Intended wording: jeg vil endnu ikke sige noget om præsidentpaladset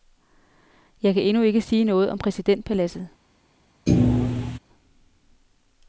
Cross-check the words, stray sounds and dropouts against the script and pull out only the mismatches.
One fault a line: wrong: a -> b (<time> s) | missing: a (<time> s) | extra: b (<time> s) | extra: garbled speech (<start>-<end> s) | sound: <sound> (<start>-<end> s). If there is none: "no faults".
wrong: vil -> kan (1.1 s)
sound: thud (3.9-4.6 s)